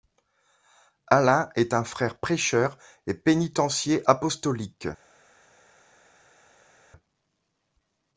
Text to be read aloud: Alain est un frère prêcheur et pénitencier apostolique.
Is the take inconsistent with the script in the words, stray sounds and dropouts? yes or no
no